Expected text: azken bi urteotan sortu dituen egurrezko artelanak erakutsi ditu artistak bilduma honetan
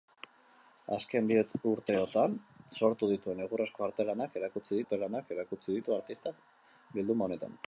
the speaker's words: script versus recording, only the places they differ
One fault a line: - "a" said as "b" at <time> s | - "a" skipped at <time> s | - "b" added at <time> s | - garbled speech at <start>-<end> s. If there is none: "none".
- "artelanak erakutsi" added at 4.8 s